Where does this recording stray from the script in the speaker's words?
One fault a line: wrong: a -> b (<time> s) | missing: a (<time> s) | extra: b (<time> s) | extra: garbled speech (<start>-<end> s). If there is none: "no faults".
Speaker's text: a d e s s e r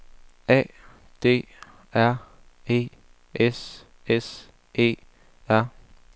extra: r (1.9 s)